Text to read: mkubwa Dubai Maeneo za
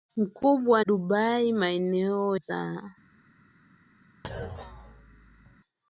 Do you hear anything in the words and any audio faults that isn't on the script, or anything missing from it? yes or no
yes